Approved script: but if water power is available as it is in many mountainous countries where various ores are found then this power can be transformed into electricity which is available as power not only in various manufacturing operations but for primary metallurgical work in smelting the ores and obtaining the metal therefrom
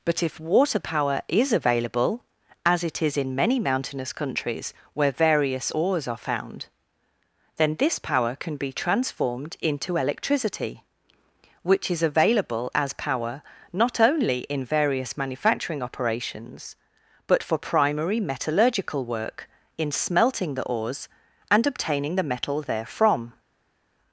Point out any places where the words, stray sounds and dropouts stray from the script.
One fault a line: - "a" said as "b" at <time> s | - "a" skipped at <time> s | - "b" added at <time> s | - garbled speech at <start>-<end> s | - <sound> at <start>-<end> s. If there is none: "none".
none